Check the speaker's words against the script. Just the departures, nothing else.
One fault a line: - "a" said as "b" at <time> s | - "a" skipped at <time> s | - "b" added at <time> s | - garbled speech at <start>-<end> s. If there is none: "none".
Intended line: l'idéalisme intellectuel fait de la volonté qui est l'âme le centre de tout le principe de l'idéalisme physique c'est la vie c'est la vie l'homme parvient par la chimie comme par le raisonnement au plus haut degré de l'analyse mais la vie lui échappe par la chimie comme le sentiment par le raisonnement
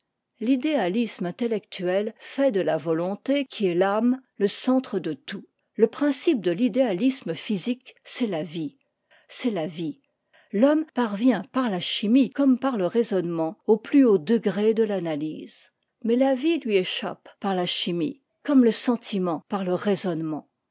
none